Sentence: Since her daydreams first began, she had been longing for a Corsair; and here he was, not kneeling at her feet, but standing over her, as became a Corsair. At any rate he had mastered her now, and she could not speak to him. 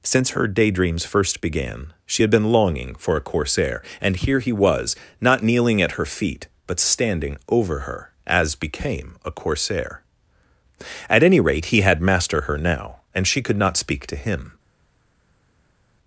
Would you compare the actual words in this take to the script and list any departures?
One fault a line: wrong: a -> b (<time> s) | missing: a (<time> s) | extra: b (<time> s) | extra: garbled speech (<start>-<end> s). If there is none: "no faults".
wrong: mastered -> master (12.0 s)